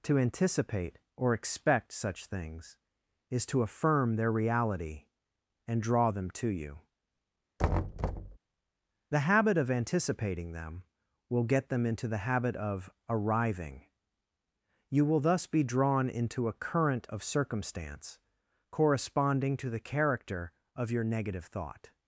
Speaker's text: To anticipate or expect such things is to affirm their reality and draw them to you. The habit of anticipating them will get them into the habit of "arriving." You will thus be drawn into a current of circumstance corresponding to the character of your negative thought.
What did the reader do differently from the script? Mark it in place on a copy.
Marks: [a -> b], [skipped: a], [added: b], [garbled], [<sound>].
To anticipate or expect such things is to affirm their reality and draw them to you. [thud] The habit of anticipating them will get them into the habit of "arriving." You will thus be drawn into a current of circumstance corresponding to the character of your negative thought.